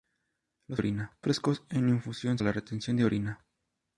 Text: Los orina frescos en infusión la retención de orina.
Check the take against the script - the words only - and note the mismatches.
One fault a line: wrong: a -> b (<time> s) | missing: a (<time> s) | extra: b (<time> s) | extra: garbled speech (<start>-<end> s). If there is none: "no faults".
no faults